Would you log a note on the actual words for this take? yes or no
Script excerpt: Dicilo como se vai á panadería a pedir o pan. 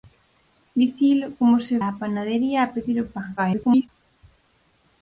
yes